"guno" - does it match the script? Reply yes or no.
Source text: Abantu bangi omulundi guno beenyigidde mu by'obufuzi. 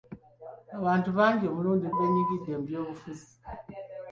no